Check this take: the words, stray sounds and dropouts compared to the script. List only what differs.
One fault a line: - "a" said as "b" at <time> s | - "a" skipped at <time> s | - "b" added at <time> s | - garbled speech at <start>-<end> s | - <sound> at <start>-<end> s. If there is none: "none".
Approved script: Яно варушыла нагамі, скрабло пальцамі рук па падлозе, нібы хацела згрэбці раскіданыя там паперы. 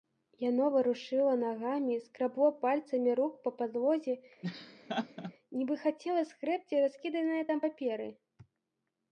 - laugh at 4.4-5.3 s